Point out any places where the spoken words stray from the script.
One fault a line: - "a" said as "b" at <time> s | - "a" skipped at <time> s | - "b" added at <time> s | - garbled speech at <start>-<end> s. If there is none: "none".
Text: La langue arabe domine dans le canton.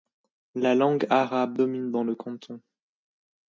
none